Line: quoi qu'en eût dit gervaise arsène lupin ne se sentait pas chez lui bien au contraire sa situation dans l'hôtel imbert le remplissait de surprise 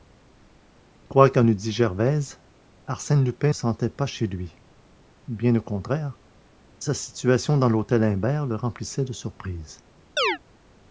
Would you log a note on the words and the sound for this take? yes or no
yes